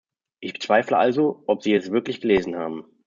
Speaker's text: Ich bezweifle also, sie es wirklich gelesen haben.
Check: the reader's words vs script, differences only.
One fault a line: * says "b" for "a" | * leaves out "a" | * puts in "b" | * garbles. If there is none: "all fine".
* puts in "ob"